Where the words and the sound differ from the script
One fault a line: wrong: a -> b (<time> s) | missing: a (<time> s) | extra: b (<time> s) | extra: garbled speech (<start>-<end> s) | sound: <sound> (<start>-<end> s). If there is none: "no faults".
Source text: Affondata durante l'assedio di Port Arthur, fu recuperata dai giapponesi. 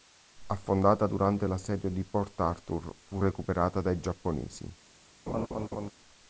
sound: laugh (5.3-5.9 s)